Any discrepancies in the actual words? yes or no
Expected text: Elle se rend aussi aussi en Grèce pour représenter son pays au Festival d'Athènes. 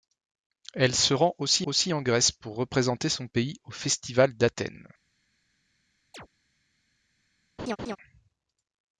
no